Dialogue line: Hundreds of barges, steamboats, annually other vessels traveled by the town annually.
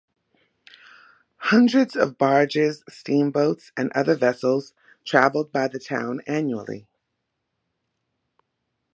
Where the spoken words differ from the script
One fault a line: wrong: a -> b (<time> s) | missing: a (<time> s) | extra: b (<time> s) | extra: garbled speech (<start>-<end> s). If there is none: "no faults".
wrong: annually -> and (3.8 s)